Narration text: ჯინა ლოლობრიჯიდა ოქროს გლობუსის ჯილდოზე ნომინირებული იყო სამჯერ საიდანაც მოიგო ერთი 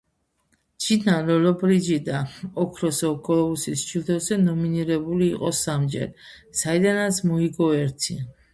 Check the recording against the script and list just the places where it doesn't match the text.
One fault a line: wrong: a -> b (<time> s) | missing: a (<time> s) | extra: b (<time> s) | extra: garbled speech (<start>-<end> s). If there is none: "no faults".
no faults